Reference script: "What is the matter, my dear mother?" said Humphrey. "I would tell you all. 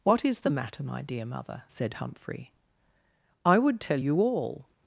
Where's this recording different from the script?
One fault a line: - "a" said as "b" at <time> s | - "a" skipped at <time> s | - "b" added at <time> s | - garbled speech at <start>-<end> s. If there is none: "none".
none